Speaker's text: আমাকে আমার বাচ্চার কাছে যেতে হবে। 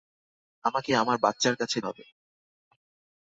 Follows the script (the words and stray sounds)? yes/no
no